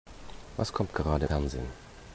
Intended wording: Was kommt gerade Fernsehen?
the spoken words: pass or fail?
pass